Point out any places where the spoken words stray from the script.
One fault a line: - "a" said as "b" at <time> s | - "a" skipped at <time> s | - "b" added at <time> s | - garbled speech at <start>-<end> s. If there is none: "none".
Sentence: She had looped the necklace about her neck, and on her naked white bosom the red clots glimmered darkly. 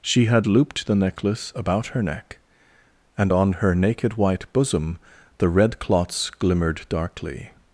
none